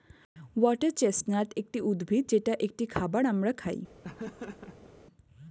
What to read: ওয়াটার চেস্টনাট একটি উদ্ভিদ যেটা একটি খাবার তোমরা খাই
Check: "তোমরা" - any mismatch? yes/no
yes